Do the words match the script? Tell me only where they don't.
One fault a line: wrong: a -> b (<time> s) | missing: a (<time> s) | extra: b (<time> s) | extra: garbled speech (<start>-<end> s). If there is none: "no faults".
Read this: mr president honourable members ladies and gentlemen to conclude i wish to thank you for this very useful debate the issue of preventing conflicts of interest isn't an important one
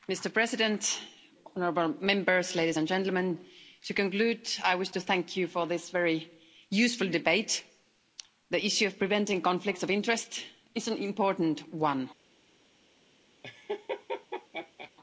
wrong: isn't -> is (10.8 s)